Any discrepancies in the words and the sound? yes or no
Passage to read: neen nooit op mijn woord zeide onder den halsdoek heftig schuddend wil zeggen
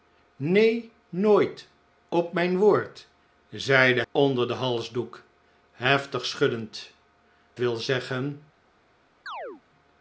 yes